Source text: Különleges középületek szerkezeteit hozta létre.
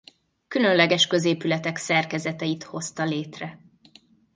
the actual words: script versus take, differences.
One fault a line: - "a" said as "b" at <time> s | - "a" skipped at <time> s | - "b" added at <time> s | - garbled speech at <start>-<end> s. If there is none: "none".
none